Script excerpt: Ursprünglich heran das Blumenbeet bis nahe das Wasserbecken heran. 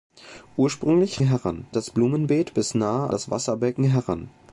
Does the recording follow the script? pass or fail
pass